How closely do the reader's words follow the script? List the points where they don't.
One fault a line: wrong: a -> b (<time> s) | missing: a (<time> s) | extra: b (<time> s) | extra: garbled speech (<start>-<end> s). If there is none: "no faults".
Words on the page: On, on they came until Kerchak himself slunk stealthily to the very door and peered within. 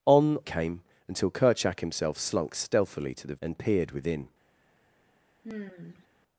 missing: on they (0.4 s)
missing: very door (3.4 s)